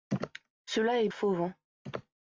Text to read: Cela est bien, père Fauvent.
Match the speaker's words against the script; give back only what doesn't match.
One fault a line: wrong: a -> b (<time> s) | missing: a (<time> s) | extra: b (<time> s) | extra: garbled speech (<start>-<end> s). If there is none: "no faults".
missing: bien père (1.1 s)